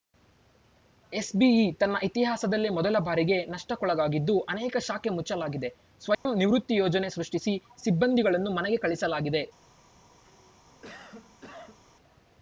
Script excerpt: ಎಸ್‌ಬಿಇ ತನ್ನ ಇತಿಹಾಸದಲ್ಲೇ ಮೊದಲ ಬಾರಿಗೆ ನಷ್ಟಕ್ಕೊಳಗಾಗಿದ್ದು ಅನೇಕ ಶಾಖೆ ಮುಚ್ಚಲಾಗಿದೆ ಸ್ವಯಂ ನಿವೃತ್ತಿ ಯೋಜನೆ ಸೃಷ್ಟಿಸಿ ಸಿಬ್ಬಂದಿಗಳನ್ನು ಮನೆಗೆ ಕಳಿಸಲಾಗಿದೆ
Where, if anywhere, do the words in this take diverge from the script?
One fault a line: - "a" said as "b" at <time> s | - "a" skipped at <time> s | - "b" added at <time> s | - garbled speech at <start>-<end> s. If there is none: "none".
none